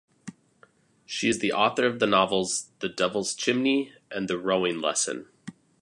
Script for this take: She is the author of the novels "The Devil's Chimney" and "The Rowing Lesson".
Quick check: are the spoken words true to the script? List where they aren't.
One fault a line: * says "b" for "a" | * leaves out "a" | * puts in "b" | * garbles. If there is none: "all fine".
all fine